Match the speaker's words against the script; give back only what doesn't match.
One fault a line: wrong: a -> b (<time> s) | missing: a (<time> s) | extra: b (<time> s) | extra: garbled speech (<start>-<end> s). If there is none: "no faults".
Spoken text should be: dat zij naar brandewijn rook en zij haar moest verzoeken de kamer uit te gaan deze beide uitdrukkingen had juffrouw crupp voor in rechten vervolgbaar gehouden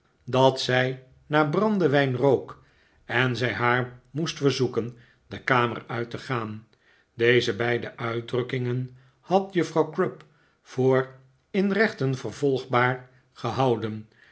no faults